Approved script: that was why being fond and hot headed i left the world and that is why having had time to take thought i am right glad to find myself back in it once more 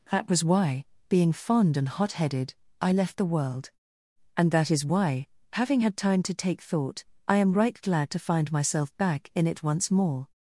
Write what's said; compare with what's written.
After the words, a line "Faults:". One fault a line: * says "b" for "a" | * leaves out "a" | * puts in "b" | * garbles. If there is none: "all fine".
that was why being fond and hot headed i left the world and that is why having had time to take thought i am right glad to find myself back in it once more
Faults:
all fine